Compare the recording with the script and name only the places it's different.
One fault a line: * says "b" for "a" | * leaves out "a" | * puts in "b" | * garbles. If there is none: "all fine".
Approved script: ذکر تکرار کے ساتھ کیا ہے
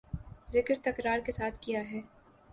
all fine